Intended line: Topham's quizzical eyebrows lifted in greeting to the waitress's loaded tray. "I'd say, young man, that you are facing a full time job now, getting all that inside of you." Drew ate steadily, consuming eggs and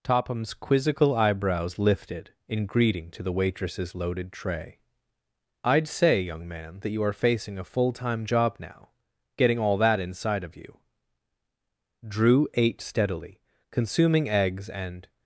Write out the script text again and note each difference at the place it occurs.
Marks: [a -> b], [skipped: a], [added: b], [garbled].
Topham's quizzical eyebrows lifted in greeting to the waitress's loaded tray. "I'd say, young man, that you are facing a full time job now, getting all that inside of you." Drew ate steadily, consuming eggs and